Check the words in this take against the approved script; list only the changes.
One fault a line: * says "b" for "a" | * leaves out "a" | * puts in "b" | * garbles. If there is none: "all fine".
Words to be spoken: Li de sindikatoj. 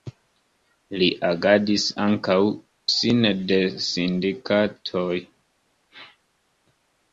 * puts in "agadis ankaŭ sine"